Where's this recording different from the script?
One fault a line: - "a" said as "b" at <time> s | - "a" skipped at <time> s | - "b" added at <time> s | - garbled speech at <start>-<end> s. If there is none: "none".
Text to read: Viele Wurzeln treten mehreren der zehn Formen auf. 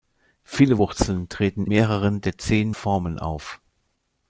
none